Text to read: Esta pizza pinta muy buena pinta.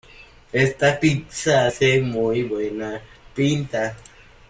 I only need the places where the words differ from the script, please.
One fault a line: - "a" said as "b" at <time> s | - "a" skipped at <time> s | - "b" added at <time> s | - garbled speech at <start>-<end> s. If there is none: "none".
- "pinta" said as "hace" at 1.6 s